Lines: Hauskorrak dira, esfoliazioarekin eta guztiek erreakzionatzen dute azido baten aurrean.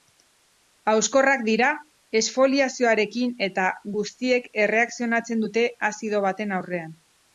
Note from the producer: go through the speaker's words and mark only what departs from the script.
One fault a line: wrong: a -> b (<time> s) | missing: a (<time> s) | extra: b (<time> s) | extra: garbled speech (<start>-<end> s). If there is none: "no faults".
no faults